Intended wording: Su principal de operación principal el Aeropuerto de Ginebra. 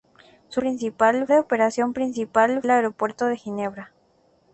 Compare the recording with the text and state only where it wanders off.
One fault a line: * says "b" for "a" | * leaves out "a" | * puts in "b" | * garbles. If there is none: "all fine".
all fine